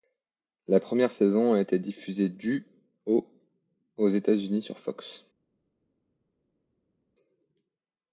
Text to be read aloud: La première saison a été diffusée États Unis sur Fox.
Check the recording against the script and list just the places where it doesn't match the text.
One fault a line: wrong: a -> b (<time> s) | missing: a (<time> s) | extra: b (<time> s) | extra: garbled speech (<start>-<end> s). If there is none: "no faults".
extra: du au aux (2.3 s)